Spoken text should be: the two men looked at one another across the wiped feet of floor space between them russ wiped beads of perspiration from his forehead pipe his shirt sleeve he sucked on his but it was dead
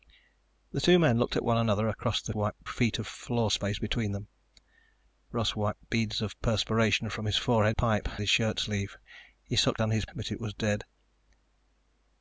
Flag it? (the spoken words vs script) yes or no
no